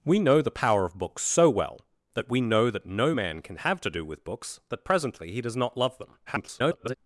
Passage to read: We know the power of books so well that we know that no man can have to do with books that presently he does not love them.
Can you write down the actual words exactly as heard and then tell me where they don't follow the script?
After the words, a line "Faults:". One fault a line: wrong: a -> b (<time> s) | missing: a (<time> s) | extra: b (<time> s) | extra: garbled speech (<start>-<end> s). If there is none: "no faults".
We know the power of books so well that we know that no man can have to do with books that presently he does not love them. [garbled]
Faults:
extra: garbled speech (6.3-7.0 s)